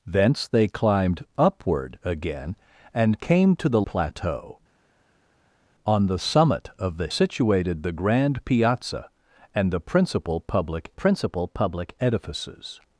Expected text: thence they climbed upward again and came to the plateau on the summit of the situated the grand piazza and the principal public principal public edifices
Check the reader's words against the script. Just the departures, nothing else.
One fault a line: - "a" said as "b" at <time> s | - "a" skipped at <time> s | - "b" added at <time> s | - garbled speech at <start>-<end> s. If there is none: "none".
none